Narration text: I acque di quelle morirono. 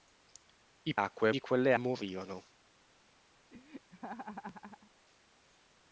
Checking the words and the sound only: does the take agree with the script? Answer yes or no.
no